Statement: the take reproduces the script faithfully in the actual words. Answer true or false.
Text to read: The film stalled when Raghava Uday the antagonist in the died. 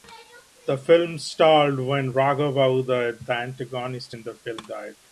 false